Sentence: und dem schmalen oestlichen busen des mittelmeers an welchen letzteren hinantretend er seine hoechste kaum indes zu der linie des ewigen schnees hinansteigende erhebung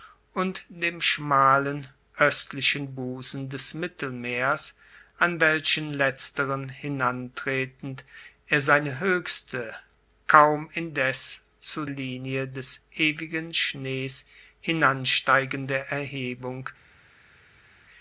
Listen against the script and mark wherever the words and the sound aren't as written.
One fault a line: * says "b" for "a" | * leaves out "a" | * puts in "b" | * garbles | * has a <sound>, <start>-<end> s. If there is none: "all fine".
* leaves out "der"